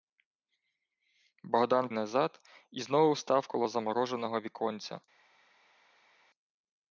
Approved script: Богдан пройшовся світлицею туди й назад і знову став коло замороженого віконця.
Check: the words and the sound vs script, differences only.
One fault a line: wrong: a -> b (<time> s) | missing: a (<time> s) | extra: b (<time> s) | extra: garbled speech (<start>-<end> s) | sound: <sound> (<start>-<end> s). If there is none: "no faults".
missing: пройшовся світлицею туди (1.9 s)